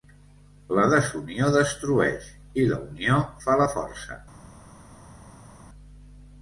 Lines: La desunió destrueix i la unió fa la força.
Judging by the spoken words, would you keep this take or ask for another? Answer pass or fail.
pass